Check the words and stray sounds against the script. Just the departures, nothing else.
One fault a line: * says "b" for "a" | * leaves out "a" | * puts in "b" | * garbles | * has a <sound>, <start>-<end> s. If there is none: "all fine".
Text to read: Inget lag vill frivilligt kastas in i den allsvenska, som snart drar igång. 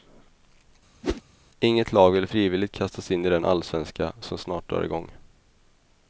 * has a whoosh, 1.0-1.2 s